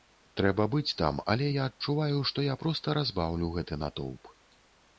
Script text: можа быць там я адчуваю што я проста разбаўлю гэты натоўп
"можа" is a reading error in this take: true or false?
true